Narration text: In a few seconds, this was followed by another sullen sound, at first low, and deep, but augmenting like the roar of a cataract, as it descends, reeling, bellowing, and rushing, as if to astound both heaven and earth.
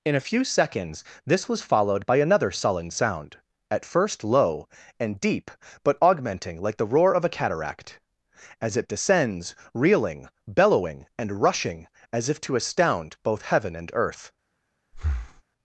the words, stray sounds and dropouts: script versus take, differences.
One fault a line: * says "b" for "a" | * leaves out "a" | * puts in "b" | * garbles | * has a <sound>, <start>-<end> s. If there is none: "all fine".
* has a breath, 14.9-15.4 s